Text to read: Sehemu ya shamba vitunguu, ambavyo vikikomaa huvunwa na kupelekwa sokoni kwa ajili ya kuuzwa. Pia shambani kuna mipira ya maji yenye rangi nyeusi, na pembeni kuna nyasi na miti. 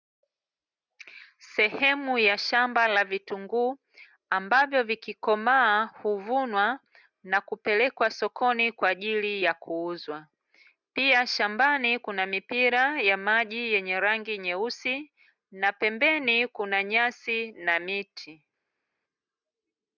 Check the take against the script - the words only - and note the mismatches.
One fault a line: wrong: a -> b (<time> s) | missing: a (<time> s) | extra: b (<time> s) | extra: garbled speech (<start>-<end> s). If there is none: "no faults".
extra: la (2.9 s)